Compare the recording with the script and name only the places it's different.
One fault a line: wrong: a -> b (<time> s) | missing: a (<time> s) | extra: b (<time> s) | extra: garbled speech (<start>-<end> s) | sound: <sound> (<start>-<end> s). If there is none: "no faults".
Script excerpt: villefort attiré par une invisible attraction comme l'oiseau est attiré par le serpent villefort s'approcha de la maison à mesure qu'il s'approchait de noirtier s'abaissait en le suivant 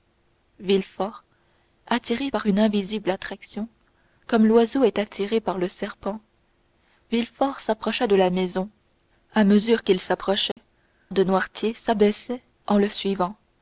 sound: dropout (10.5-10.6 s)